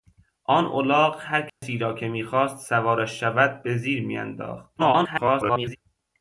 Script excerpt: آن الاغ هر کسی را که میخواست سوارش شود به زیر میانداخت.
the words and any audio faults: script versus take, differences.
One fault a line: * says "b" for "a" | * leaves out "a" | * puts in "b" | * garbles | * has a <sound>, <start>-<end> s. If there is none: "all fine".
* has a dropout, 1.5-1.6 s
* garbles